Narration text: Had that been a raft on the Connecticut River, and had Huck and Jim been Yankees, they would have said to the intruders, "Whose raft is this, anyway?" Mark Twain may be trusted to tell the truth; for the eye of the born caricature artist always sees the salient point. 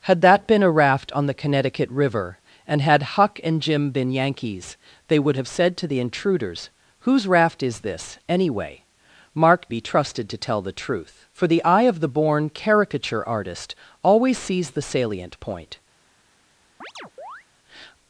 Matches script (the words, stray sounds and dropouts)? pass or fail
fail